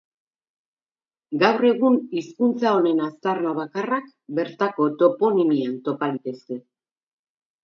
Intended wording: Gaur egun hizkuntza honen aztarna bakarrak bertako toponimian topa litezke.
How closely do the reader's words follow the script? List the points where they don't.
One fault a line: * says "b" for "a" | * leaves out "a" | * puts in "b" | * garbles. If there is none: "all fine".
all fine